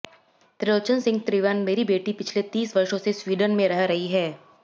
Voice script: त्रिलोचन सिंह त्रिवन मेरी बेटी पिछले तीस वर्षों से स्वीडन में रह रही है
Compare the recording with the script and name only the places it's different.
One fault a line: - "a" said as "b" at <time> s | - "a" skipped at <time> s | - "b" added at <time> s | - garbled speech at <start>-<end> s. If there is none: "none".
none